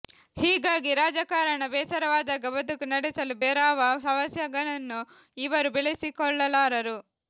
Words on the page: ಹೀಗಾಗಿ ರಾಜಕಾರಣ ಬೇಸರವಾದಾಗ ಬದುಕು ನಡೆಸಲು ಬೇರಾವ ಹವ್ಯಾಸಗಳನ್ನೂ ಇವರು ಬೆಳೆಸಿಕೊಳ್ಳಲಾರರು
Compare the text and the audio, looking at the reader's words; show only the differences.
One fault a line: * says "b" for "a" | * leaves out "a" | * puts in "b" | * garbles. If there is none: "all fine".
all fine